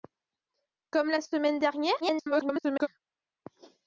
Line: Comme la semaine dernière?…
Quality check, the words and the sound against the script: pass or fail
fail